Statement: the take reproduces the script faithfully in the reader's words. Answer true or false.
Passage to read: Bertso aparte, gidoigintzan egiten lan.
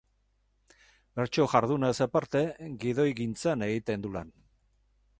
false